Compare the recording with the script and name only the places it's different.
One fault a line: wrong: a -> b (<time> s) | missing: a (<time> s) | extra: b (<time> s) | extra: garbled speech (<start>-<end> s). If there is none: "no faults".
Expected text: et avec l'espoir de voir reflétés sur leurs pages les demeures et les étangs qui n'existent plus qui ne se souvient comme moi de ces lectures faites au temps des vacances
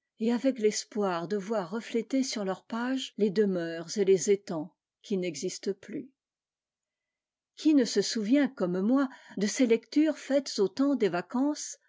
no faults